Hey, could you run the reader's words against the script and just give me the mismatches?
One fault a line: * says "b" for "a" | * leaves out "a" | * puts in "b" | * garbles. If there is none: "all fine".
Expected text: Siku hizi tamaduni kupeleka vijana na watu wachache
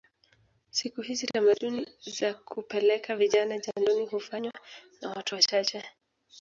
* puts in "za"
* puts in "jandoni hufanywa"